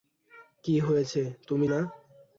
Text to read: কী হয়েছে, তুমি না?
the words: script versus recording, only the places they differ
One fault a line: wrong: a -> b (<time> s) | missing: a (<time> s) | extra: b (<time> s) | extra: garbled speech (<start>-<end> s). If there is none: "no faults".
no faults